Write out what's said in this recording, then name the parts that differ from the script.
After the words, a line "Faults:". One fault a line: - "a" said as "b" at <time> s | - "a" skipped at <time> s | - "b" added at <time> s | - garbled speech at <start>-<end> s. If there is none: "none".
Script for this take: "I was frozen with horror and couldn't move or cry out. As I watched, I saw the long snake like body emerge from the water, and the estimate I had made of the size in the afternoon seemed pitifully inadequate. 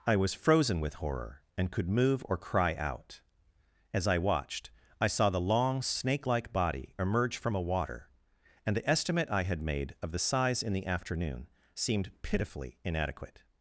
"I was frozen with horror and could move or cry out. As I watched, I saw the long snake like body emerge from a water, and the estimate I had made of the size in the afternoon seemed pitifully inadequate.
Faults:
- "couldn't" said as "could" at 1.7 s
- "the" said as "a" at 7.5 s